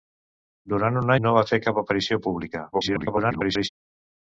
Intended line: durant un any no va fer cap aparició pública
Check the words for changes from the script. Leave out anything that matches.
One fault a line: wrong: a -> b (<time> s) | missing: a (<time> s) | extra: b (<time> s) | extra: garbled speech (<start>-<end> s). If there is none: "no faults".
missing: any (1.1 s)
extra: garbled speech (2.7-3.7 s)